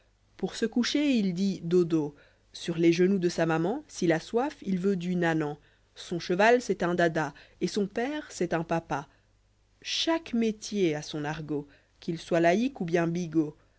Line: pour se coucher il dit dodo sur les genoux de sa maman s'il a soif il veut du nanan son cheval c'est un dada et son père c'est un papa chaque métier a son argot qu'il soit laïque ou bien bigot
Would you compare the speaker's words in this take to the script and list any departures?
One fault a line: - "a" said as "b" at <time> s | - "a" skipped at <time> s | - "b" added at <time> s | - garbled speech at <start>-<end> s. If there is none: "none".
none